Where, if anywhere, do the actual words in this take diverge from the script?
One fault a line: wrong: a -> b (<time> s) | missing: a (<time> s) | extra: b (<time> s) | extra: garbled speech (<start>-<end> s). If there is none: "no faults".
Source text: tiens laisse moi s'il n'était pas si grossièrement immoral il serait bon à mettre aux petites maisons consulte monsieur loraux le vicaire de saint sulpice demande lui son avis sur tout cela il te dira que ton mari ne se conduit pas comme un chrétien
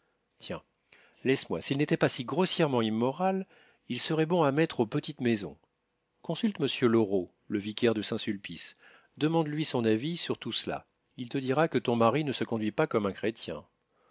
no faults